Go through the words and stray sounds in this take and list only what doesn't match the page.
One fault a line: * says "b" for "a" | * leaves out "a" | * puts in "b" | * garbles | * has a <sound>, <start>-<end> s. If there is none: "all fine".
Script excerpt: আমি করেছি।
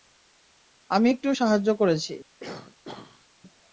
* puts in "একটু সাহায্য"
* has a throat clearing, 2.4-3.3 s